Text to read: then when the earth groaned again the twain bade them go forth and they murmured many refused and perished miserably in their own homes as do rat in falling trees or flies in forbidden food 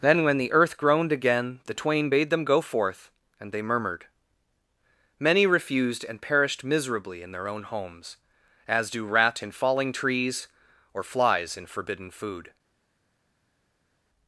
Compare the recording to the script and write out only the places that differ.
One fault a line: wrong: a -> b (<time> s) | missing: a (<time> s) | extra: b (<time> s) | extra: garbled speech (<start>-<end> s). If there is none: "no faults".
no faults